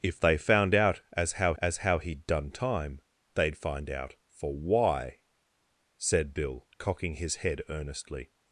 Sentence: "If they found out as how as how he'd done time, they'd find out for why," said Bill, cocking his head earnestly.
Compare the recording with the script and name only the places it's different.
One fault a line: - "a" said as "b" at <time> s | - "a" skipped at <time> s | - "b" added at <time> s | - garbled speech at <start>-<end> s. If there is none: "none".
none